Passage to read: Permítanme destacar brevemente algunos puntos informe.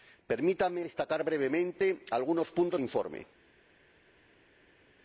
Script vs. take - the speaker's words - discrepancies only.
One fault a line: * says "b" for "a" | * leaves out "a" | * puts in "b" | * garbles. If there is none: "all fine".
all fine